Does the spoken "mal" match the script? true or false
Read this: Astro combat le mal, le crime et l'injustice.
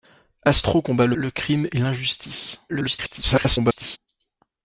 false